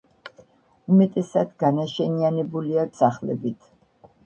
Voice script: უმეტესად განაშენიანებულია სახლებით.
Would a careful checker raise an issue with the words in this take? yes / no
no